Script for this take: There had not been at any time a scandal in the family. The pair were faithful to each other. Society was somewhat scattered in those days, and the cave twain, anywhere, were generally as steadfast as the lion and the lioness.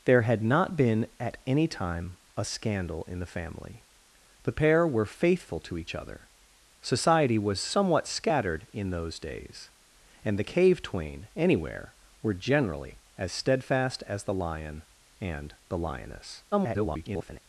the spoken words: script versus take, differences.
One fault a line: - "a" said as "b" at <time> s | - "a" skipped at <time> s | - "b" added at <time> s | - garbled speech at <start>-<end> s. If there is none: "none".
- garbled speech at 16.5-17.4 s